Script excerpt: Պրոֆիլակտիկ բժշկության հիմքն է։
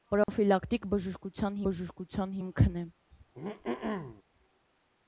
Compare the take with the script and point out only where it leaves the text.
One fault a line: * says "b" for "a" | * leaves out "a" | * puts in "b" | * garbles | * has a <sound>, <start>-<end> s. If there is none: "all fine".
* has a dropout, 0.2-0.3 s
* puts in "բժշկության"
* has a throat clearing, 3.1-4.2 s